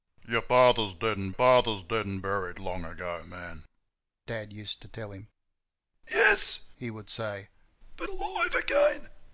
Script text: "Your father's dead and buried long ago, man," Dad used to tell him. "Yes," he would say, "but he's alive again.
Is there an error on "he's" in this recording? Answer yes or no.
yes